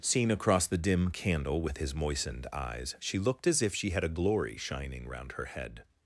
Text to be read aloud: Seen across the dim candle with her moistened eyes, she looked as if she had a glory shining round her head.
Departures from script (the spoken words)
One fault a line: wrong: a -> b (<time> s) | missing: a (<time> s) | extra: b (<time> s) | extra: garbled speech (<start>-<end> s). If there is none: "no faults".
wrong: her -> his (1.8 s)